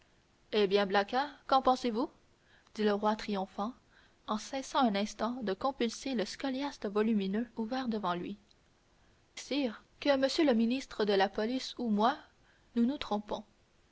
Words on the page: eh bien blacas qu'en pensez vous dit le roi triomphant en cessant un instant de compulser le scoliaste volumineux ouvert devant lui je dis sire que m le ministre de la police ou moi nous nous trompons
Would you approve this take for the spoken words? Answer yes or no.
no